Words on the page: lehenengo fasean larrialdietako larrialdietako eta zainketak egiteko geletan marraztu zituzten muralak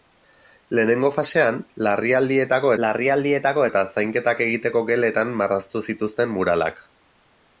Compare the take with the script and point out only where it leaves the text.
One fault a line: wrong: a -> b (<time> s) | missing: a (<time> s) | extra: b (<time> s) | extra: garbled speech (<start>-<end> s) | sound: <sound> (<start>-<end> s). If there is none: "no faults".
no faults